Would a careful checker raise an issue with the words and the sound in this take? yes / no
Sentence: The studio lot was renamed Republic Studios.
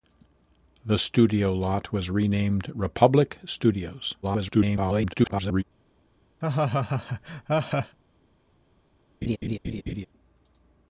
yes